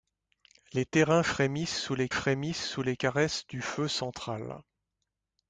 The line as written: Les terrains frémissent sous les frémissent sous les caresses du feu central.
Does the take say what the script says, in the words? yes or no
yes